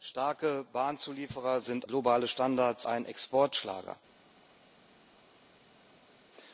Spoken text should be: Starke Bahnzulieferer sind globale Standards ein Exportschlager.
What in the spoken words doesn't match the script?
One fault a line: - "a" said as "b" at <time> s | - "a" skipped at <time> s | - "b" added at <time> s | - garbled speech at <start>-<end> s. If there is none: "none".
none